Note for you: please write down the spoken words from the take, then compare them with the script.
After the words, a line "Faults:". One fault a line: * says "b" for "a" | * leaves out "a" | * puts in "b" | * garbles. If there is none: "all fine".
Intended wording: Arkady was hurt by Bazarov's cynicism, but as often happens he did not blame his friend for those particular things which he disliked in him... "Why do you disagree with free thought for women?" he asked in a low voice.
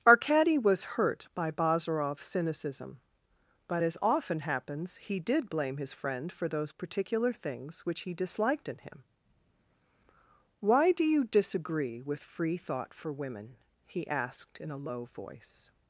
Arkady was hurt by Bazarov's cynicism, but as often happens he did blame his friend for those particular things which he disliked in him... "Why do you disagree with free thought for women?" he asked in a low voice.
Faults:
* leaves out "not"